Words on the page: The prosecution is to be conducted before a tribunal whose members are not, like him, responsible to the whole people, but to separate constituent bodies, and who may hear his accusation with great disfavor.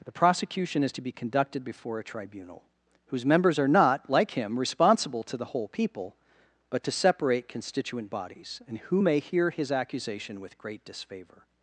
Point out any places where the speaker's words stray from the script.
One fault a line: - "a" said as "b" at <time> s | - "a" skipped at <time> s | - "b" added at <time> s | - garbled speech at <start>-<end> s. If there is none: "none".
none